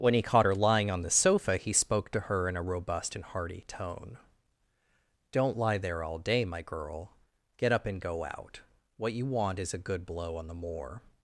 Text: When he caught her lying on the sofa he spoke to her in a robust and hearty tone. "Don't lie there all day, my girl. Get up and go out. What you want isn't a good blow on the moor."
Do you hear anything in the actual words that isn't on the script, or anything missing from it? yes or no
yes